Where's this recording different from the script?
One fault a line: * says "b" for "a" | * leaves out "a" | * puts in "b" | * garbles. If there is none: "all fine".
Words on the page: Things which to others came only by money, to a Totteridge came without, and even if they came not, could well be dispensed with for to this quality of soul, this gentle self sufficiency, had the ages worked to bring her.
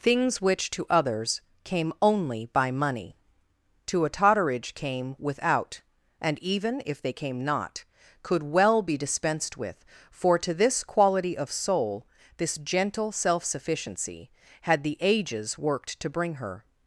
all fine